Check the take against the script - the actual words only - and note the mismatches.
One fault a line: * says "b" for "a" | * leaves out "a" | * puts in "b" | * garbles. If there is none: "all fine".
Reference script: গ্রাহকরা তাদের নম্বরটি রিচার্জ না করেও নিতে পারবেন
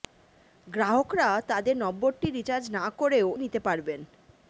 all fine